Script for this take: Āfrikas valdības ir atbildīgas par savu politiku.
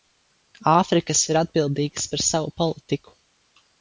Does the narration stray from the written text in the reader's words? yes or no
yes